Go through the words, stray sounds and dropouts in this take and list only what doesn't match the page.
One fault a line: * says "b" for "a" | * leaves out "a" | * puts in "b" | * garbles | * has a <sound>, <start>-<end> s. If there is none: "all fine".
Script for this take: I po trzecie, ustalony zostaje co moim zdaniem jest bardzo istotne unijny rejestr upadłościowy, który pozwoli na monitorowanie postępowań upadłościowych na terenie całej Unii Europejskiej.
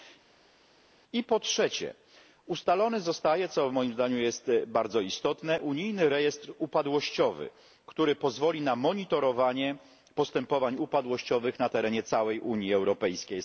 all fine